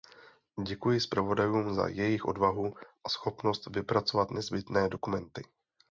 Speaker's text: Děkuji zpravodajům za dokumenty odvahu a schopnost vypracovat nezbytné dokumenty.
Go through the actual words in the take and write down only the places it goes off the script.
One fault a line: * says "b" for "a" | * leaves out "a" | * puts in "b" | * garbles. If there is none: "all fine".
* says "jejich" for "dokumenty"